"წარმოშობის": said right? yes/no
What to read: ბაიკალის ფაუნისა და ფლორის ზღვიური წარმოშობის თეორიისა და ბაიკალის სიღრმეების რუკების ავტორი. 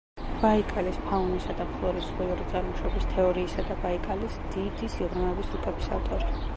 yes